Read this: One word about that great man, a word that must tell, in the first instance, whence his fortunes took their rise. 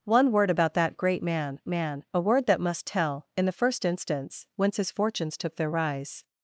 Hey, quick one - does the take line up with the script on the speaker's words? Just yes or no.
no